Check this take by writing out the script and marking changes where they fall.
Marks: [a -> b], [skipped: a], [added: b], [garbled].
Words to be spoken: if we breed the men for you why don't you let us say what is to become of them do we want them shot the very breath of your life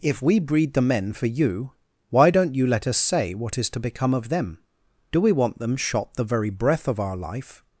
if we breed the men for you why don't you let us say what is to become of them do we want them shot the very breath of [your -> our] life